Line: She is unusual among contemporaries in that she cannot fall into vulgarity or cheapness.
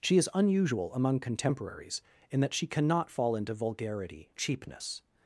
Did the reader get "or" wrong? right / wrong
wrong